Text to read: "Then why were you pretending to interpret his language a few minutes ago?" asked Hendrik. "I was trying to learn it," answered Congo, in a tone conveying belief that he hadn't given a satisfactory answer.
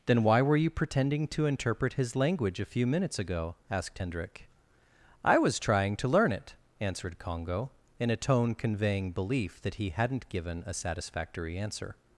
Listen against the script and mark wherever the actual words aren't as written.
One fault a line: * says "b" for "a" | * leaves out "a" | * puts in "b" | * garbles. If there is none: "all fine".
all fine